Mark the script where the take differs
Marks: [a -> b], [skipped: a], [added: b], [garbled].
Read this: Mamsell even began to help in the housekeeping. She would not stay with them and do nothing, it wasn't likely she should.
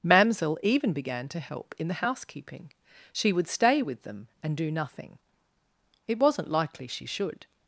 Mamsell even began to help in the housekeeping. She would [skipped: not] stay with them and do nothing, it wasn't likely she should.